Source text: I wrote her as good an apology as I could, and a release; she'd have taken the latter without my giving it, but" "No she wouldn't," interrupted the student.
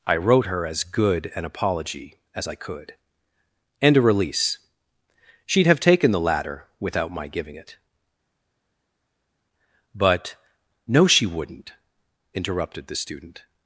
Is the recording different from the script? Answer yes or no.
no